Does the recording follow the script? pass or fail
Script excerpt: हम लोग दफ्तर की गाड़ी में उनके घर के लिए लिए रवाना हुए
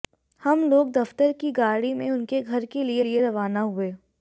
pass